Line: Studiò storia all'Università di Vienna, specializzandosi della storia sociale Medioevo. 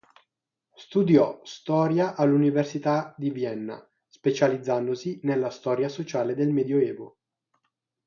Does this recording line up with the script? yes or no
no